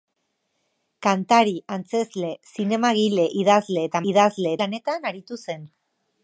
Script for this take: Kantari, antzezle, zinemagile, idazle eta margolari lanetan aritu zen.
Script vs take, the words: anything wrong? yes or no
yes